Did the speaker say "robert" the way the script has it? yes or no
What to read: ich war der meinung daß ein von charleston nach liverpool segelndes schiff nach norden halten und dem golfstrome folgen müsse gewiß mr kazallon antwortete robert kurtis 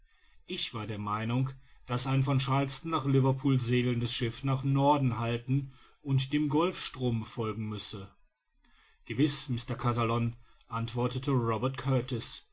yes